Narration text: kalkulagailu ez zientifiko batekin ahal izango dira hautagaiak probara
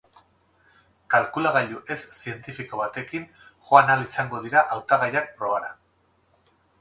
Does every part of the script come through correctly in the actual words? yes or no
no